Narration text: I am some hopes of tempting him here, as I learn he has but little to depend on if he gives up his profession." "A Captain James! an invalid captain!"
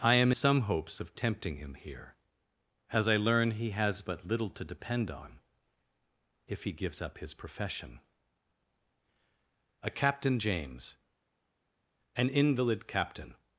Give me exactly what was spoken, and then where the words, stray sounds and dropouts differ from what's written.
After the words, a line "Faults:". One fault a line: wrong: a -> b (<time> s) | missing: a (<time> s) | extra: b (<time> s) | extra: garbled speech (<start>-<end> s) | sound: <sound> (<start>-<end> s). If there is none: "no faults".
I am some hopes of tempting him here, as I learn he has but little to depend on if he gives up his profession." "A Captain James! an invalid captain!"
Faults:
no faults